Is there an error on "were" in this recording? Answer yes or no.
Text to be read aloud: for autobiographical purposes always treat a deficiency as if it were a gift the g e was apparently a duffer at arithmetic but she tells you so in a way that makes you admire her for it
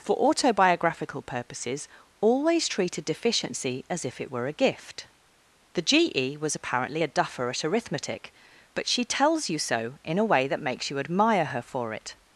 no